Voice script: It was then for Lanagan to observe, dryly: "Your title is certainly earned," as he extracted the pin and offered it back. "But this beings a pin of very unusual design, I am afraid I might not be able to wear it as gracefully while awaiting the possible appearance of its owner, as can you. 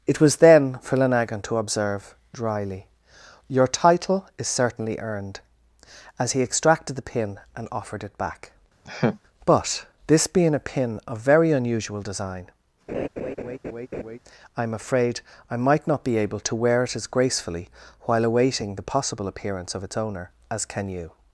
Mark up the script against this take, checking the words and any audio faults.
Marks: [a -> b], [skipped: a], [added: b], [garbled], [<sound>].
It was then for Lanagan to observe, dryly: "Your title is certainly earned," as he extracted the pin and offered it back. [laugh] "But this [beings -> being] a pin of very unusual design, [laugh] I am afraid I might not be able to wear it as gracefully while awaiting the possible appearance of its owner, as can you.